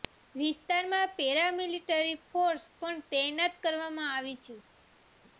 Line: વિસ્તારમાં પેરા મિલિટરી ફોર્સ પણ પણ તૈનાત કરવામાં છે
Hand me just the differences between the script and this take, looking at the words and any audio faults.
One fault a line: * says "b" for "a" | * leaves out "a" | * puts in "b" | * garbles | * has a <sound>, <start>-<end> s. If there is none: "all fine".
* leaves out "પણ"
* puts in "આવી"